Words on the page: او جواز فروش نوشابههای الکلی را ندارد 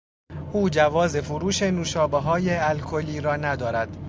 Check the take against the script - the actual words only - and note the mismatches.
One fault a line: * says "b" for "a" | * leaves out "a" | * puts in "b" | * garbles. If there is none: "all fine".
all fine